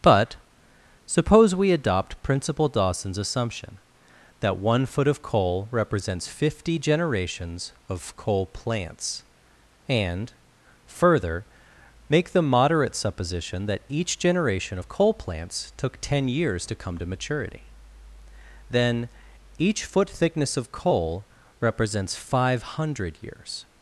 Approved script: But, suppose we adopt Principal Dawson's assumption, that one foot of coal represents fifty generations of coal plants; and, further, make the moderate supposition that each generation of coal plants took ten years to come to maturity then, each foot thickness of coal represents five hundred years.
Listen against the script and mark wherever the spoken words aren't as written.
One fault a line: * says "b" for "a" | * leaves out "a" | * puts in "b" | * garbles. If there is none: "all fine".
all fine